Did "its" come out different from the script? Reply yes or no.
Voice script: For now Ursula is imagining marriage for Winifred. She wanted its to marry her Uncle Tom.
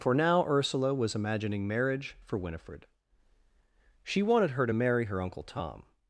yes